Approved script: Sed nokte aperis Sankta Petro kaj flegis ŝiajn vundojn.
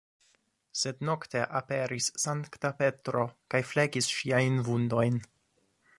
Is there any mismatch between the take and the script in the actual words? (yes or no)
no